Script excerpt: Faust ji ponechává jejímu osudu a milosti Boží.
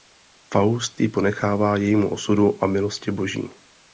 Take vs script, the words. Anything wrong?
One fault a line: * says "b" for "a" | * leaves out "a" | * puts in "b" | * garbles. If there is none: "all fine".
all fine